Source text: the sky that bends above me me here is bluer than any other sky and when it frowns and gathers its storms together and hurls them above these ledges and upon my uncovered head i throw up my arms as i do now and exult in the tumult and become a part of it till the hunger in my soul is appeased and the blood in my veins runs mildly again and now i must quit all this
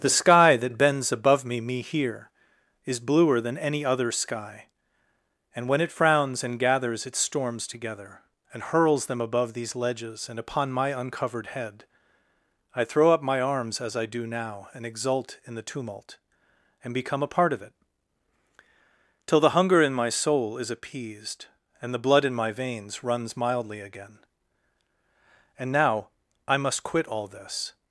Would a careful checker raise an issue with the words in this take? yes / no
no